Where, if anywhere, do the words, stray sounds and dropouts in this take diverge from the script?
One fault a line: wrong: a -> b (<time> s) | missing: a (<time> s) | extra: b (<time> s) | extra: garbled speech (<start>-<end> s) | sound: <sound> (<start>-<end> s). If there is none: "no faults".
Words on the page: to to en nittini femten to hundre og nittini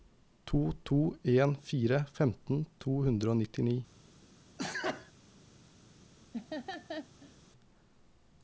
wrong: nittini -> fire (1.7 s)
sound: sneeze (4.6-5.1 s)
sound: laugh (6.3-7.4 s)